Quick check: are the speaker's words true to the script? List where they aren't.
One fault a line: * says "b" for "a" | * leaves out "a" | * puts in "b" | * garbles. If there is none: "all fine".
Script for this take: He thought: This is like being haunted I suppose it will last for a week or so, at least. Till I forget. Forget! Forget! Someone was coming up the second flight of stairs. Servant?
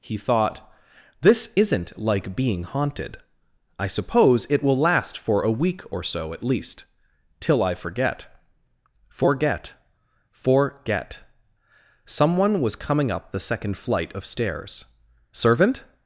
* says "isn't" for "is"